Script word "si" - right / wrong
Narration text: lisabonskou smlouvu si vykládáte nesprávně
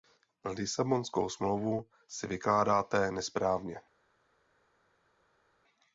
right